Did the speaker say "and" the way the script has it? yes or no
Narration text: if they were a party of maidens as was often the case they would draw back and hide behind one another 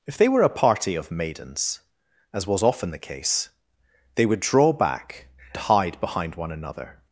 no